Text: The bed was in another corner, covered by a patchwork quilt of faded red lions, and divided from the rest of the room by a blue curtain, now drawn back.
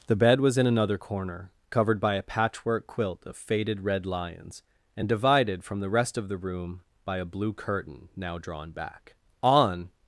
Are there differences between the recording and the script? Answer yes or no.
yes